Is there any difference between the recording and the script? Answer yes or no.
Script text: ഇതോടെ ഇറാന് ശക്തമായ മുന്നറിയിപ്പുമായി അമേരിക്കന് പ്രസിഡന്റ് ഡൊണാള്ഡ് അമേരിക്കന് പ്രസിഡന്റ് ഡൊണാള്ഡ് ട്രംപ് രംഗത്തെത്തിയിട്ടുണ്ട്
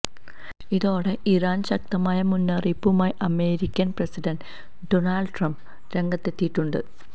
yes